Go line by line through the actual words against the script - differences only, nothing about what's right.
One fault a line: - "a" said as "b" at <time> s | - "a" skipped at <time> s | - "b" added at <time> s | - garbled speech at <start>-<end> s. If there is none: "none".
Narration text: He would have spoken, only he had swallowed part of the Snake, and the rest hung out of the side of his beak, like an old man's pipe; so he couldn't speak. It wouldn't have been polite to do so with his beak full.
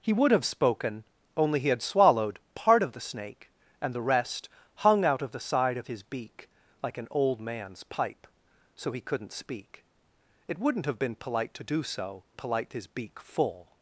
- "with" said as "polite" at 12.3 s